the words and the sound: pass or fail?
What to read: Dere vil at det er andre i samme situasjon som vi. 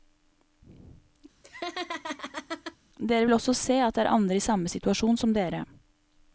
fail